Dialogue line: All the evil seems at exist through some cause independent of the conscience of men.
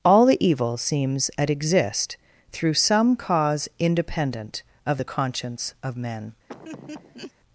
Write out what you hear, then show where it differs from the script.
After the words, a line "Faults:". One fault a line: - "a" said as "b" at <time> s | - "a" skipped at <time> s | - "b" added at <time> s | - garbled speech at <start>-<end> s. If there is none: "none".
All the evil seems at exist through some cause independent of the conscience of men.
Faults:
none